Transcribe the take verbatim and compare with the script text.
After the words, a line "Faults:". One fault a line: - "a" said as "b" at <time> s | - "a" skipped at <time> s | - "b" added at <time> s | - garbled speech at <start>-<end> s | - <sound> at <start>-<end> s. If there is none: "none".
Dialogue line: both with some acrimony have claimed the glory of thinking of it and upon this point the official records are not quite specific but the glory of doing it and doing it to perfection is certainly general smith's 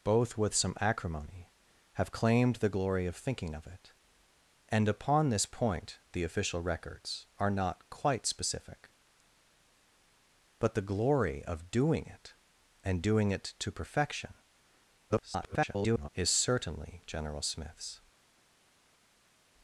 both with some acrimony have claimed the glory of thinking of it and upon this point the official records are not quite specific but the glory of doing it and doing it to perfection [garbled] is certainly general smith's
Faults:
- garbled speech at 15.1-16.1 s